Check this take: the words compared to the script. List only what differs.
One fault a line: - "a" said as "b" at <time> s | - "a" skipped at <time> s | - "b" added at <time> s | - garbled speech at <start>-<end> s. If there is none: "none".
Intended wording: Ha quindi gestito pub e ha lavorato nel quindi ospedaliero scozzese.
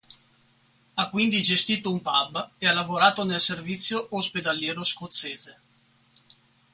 - "un" added at 1.9 s
- "quindi" said as "servizio" at 3.4 s